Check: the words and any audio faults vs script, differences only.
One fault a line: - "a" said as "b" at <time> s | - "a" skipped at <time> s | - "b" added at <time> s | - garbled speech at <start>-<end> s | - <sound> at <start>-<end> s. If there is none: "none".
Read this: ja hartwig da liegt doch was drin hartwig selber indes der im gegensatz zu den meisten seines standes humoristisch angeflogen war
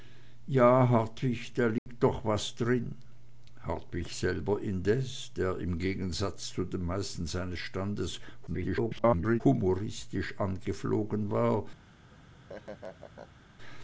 - dropout at 1.8-1.9 s
- garbled speech at 8.5-9.4 s
- laugh at 12.1-13.5 s